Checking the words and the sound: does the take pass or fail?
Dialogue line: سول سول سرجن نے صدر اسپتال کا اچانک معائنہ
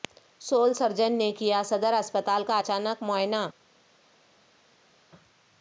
fail